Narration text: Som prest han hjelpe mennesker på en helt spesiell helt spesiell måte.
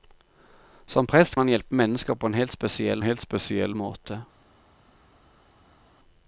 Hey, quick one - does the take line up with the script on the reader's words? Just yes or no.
yes